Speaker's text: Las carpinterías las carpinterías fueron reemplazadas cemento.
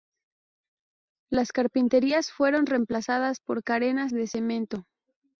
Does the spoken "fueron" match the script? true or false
false